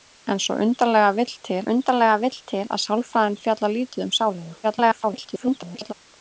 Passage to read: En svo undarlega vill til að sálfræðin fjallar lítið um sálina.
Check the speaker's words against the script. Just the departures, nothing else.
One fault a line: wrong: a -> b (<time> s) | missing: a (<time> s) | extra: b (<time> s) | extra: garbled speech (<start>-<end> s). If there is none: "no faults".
extra: undarlega vill til (1.7 s)
extra: garbled speech (4.6-5.9 s)